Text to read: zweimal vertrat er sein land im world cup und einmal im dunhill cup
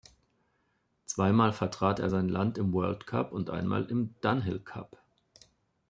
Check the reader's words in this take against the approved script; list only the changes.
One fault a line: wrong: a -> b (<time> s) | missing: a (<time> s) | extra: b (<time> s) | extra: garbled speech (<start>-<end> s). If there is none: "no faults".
no faults